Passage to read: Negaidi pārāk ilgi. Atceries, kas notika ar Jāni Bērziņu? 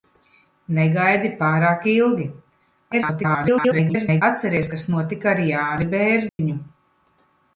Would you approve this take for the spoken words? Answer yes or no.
no